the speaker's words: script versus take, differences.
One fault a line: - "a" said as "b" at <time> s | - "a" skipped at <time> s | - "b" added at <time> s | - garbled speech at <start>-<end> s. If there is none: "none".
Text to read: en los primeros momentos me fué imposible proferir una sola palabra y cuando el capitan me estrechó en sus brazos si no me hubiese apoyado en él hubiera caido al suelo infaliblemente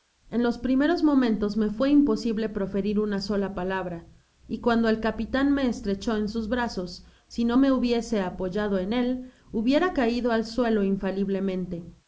none